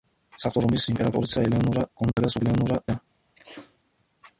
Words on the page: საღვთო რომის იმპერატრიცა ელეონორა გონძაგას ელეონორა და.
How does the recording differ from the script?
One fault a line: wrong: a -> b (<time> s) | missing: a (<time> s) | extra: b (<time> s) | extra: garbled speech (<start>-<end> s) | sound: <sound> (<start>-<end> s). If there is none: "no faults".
sound: dropout (2.1-2.2 s)
sound: sneeze (3.3-3.8 s)